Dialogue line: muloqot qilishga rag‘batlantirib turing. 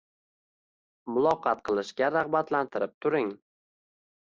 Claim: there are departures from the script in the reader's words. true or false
false